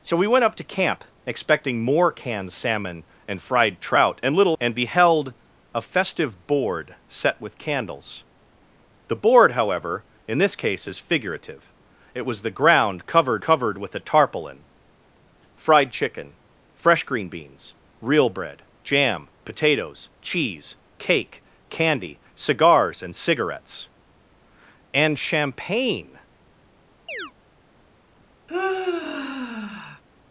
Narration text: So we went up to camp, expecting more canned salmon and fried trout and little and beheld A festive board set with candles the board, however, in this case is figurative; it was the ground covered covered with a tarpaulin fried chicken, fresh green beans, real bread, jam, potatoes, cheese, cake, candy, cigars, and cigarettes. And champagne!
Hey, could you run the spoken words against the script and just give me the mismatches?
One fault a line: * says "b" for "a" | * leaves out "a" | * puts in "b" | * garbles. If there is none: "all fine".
all fine